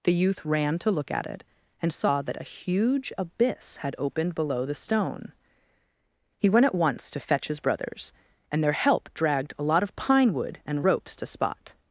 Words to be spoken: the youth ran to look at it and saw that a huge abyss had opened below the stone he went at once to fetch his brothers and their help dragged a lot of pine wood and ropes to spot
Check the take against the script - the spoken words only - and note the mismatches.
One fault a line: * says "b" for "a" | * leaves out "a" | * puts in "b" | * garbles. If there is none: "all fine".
all fine